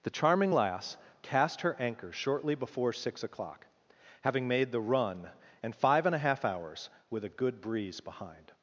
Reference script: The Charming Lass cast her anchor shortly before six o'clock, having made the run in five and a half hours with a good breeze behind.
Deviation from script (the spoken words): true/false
true